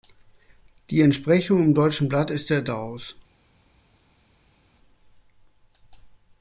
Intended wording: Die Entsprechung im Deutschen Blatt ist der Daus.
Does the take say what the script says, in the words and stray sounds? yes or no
yes